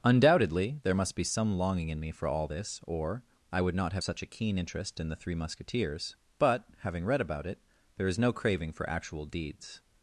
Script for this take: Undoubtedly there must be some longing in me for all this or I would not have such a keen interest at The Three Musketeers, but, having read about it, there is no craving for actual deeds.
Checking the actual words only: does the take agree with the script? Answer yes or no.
no